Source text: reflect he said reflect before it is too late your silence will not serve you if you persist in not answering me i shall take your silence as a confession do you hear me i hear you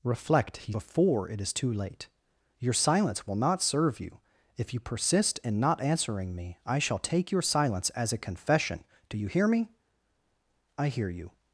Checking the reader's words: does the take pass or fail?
fail